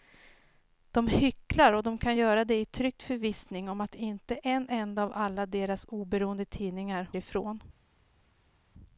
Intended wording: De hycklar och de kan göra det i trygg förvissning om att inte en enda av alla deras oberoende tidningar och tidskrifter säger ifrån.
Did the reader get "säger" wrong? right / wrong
wrong